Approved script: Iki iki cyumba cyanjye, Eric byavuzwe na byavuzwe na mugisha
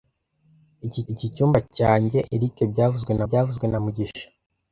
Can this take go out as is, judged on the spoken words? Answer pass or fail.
pass